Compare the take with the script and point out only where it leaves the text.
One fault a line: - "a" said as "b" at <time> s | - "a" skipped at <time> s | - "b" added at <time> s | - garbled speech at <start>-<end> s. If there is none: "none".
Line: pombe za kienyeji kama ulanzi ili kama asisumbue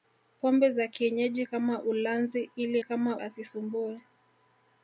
none